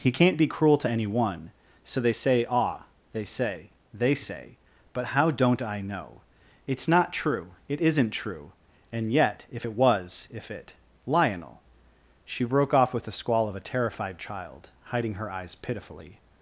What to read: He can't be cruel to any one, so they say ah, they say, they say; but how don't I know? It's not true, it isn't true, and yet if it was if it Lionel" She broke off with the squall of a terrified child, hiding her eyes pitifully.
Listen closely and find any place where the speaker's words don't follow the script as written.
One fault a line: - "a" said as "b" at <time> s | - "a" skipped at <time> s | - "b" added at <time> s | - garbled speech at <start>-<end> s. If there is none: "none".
none